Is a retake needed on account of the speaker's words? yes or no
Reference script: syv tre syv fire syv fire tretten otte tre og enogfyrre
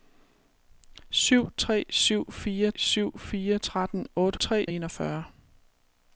no